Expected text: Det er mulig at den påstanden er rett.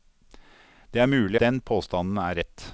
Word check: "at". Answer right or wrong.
wrong